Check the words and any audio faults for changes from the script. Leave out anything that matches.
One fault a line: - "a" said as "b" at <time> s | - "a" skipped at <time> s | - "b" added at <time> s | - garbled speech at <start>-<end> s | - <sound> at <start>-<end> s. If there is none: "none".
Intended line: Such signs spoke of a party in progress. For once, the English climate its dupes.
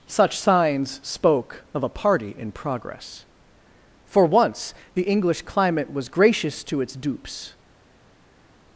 - "was gracious to" added at 5.9 s